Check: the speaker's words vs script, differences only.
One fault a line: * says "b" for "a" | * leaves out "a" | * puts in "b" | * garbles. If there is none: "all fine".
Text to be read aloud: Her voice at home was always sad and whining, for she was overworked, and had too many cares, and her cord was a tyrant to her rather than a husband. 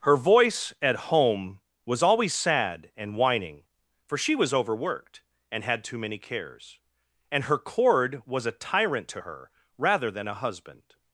all fine